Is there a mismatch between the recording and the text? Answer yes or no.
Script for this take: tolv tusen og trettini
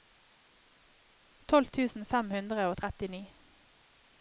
yes